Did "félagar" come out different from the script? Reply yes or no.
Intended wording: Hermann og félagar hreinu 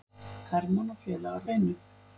no